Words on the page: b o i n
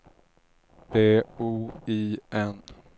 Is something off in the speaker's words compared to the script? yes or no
no